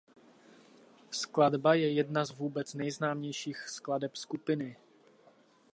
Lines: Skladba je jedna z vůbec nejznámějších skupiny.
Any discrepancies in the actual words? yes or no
yes